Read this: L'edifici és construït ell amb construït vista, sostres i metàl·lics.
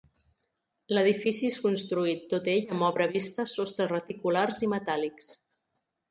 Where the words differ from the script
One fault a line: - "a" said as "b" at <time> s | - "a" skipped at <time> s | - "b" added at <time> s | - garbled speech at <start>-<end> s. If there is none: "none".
- "tot" added at 2.3 s
- "construït" said as "obra" at 2.9 s
- "reticulars" added at 3.9 s